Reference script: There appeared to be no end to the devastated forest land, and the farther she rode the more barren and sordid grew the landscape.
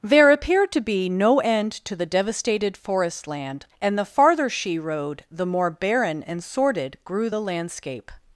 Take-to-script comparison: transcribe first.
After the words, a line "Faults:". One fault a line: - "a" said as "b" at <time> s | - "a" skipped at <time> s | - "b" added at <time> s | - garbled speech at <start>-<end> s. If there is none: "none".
There appeared to be no end to the devastated forest land, and the farther she rode the more barren and sordid grew the landscape.
Faults:
none